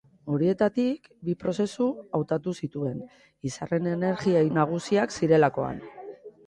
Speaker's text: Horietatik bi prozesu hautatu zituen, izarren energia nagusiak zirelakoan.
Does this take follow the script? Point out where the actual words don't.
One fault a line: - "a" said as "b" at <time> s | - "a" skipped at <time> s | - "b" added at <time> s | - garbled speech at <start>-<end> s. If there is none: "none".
none